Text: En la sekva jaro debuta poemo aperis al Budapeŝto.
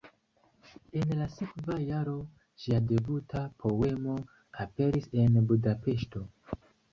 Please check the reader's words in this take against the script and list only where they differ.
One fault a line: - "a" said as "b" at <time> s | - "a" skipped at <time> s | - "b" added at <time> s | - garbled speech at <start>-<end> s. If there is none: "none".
- "ŝia" added at 2.6 s
- "al" said as "en" at 5.3 s